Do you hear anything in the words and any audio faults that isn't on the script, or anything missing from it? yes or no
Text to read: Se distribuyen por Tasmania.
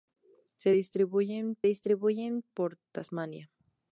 yes